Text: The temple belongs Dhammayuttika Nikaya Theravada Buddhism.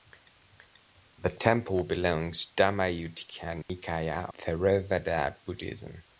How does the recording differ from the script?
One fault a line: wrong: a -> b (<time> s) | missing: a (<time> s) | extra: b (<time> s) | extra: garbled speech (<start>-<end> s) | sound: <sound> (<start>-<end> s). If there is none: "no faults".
sound: dropout (3.6-3.7 s)